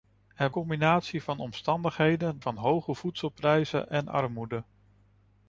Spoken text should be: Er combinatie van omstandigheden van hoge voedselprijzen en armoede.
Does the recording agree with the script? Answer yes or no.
yes